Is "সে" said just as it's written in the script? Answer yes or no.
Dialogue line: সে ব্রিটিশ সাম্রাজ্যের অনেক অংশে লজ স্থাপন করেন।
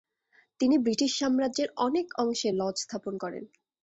no